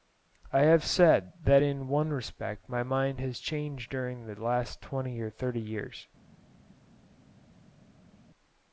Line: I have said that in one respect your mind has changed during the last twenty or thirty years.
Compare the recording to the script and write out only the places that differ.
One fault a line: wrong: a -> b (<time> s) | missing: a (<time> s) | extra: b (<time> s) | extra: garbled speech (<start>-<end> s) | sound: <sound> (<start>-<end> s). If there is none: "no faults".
wrong: your -> my (2.7 s)